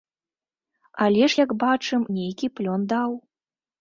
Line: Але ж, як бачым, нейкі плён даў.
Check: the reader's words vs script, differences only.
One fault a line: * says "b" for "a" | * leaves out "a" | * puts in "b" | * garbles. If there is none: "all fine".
all fine